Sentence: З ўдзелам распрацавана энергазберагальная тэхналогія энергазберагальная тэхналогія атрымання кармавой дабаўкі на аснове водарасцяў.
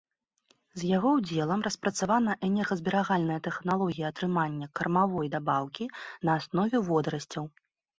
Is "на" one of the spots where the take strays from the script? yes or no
no